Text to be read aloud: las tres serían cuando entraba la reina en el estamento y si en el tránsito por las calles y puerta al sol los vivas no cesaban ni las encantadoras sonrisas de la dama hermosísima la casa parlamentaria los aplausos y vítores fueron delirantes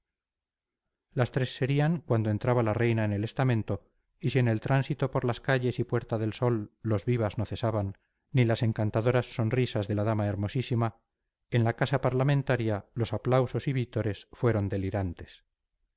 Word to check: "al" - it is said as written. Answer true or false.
false